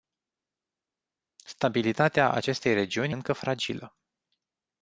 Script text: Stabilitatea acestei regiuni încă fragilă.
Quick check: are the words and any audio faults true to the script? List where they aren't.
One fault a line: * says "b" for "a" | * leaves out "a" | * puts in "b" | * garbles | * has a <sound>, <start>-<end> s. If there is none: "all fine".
all fine